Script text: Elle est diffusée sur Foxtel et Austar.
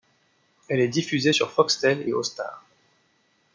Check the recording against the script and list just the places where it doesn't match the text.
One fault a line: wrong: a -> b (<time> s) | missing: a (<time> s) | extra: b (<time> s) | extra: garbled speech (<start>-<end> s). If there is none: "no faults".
no faults